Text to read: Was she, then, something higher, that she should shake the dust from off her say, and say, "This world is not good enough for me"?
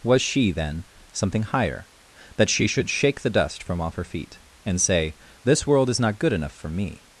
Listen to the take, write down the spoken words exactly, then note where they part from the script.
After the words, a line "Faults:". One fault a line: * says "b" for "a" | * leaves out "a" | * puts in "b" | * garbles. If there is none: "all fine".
Was she, then, something higher, that she should shake the dust from off her feet, and say, "This world is not good enough for me"?
Faults:
* says "feet" for "say"